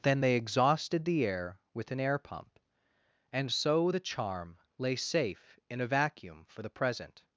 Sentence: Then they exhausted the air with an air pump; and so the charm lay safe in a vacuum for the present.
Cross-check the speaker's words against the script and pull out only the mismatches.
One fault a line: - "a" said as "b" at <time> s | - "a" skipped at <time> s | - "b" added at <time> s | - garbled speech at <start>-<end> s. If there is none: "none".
none